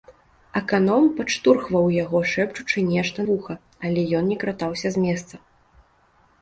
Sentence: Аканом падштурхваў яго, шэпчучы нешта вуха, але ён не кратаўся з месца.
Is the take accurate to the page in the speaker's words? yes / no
yes